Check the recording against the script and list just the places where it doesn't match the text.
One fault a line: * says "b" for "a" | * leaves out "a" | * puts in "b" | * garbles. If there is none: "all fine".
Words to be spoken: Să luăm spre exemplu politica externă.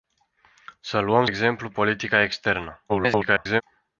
* leaves out "spre"
* garbles